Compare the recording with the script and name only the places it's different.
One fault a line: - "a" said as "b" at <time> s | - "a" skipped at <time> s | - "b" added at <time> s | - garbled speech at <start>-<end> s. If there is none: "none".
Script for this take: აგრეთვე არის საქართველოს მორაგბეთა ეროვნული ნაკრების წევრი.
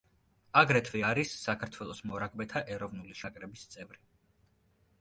none